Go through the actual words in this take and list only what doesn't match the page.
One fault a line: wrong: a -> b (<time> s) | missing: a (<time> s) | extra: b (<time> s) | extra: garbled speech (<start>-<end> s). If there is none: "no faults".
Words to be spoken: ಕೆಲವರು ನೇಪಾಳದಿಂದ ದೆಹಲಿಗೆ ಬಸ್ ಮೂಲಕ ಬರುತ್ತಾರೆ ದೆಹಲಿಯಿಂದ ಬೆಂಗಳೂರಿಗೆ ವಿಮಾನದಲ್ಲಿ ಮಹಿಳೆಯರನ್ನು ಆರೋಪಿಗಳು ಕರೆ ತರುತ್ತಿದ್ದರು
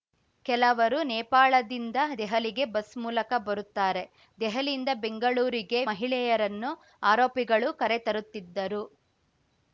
missing: ವಿಮಾನದಲ್ಲಿ (5.8 s)